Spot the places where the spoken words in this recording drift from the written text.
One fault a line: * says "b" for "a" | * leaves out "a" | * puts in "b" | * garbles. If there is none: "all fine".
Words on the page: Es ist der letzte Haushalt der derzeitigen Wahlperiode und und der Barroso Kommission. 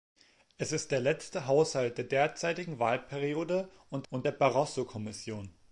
all fine